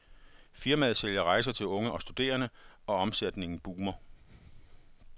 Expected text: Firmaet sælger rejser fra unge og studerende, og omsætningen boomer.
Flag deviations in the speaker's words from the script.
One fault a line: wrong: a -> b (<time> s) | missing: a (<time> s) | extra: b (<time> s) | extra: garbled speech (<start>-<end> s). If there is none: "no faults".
wrong: fra -> til (1.5 s)